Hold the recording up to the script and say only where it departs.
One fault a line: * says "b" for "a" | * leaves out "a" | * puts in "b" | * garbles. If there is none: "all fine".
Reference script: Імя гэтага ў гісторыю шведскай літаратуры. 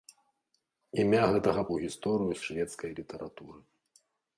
all fine